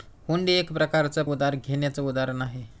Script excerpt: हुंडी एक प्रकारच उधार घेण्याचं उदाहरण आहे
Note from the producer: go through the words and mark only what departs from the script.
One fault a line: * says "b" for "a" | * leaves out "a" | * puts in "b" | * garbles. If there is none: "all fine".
all fine